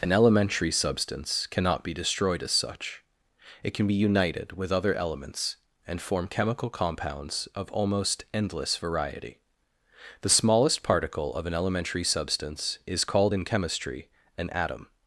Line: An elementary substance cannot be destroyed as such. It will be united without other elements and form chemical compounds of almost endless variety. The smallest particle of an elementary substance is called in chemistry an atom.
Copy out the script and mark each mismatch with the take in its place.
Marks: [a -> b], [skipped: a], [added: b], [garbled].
An elementary substance cannot be destroyed as such. It [will -> can] be united [without -> with] other elements and form chemical compounds of almost endless variety. The smallest particle of an elementary substance is called in chemistry an atom.